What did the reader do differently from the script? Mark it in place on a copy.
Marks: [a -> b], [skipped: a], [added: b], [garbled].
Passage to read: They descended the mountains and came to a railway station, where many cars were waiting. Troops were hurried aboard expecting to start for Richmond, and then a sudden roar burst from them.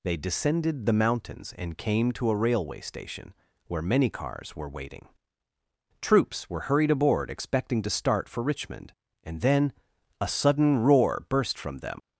They descended the mountains and came to a railway station, where many cars were waiting. Troops were hurried aboard expecting to start for Richmond, and then a sudden roar burst from them.